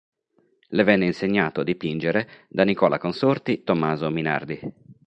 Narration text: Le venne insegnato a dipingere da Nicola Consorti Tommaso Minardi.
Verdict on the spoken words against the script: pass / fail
pass